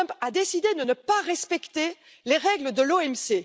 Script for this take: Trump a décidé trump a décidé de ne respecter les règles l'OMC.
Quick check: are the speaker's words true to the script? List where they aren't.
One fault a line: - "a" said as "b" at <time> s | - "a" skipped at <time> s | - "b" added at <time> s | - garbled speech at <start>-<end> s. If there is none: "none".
- "trump a décidé" skipped at 0.7 s
- "pas" added at 0.9 s
- "de" added at 2.7 s